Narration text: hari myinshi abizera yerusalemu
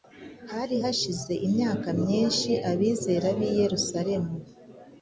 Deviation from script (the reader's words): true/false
true